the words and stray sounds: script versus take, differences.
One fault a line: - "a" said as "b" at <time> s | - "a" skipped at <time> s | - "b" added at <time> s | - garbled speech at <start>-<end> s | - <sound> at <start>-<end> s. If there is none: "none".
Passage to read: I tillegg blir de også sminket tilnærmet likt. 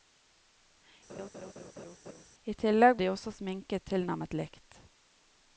- laugh at 1.1-2.2 s
- "blir" skipped at 3.0 s